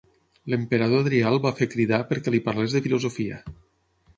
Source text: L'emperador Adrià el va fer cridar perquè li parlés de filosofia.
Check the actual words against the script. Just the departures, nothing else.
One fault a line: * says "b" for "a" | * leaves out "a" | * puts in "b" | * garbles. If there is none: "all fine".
all fine